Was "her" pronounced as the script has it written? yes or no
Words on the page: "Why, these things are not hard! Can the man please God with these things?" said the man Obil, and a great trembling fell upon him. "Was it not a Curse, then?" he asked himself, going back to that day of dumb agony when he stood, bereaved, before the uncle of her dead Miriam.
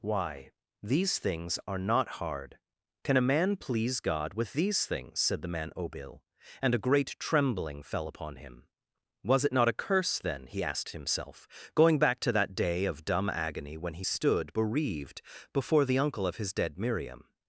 no